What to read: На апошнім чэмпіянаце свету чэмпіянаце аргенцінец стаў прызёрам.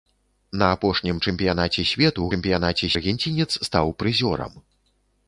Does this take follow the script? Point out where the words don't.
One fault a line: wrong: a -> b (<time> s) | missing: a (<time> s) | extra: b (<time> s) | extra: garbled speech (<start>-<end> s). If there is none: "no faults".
no faults